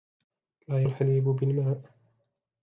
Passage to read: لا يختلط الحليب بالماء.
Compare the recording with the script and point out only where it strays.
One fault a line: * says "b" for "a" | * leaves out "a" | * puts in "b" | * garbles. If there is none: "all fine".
* leaves out "يختلط"